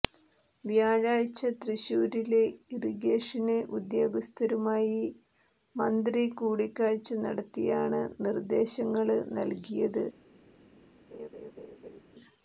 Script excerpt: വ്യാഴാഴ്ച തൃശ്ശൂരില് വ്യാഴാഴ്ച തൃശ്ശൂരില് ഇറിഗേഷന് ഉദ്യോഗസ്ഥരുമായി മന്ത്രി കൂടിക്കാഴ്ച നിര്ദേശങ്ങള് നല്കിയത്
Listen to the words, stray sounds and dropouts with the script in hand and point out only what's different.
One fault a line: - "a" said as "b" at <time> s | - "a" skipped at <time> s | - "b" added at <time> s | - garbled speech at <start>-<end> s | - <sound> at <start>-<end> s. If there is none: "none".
- "വ്യാഴാഴ്ച തൃശ്ശൂരില്" skipped at 2.4 s
- "നടത്തിയാണ്" added at 7.3 s
- laugh at 11.1-12.0 s